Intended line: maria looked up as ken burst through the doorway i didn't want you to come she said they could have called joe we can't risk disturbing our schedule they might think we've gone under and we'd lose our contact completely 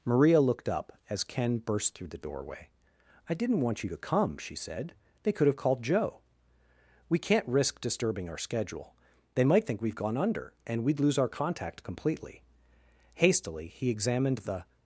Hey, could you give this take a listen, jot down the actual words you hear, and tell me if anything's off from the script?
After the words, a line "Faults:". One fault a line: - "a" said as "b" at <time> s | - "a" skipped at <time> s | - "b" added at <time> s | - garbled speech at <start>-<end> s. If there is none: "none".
maria looked up as ken burst through the doorway i didn't want you to come she said they could have called joe we can't risk disturbing our schedule they might think we've gone under and we'd lose our contact completely hastily he examined the
Faults:
- "hastily he examined the" added at 13.2 s